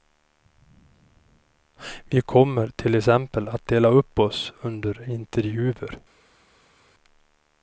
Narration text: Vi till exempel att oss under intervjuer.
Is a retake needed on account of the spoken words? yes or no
yes